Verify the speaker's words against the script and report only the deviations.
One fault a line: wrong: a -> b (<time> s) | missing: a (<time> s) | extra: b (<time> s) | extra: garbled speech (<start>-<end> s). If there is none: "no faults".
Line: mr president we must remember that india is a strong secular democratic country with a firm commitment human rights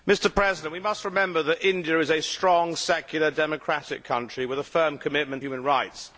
no faults